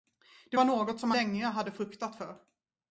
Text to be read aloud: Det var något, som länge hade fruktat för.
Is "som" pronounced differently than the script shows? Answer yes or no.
no